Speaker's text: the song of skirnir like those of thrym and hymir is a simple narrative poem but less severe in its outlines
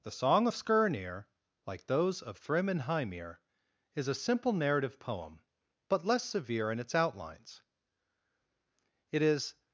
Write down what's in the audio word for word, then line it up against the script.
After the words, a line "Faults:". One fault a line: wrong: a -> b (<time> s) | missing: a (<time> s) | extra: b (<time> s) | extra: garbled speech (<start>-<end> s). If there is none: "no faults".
the song of skirnir like those of thrym and hymir is a simple narrative poem but less severe in its outlines it is
Faults:
extra: it is (9.1 s)